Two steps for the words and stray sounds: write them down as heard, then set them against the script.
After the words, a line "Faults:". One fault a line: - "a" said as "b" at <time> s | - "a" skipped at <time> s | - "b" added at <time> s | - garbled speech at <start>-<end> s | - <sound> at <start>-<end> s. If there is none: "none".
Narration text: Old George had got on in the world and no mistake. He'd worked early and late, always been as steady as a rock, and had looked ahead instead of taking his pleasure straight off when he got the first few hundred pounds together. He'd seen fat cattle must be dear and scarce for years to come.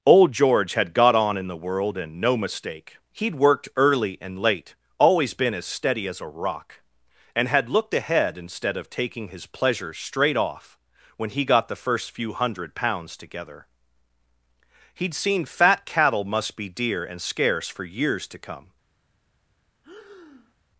Old George had got on in the world and no mistake. He'd worked early and late, always been as steady as a rock, and had looked ahead instead of taking his pleasure straight off when he got the first few hundred pounds together. He'd seen fat cattle must be dear and scarce for years to come.
Faults:
- breath at 19.8-20.5 s